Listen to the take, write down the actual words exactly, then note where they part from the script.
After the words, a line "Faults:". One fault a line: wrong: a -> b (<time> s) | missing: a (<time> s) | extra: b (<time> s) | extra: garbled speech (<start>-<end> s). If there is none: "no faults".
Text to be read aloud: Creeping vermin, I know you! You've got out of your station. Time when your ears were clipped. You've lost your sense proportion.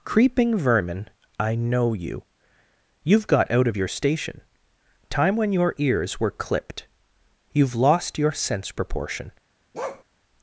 Creeping vermin, I know you! You've got out of your station. Time when your ears were clipped. You've lost your sense proportion.
Faults:
no faults